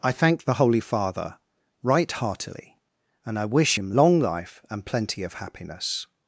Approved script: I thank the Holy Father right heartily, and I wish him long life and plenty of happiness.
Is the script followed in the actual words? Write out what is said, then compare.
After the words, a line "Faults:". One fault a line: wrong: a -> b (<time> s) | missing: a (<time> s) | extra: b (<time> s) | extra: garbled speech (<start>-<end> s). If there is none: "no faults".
I thank the Holy Father right heartily, and I wish him long life and plenty of happiness.
Faults:
no faults